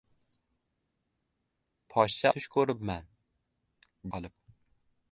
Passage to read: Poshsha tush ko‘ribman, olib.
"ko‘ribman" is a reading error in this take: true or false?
false